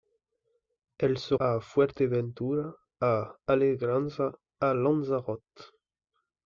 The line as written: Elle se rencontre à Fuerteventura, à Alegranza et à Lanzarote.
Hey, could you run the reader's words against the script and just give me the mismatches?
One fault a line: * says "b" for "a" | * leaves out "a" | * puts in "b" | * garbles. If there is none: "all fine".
* leaves out "rencontre"
* leaves out "et"